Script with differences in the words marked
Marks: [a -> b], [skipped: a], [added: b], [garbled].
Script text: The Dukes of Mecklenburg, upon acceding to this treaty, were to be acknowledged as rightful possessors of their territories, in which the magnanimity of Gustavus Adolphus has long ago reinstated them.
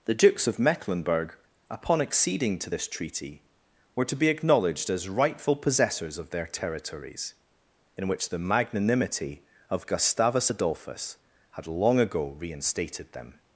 The Dukes of Mecklenburg, upon acceding to this treaty, were to be acknowledged as rightful possessors of their territories, in which the magnanimity of Gustavus Adolphus [has -> had] long ago reinstated them.